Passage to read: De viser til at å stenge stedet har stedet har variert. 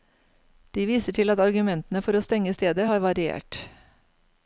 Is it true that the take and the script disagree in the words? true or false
true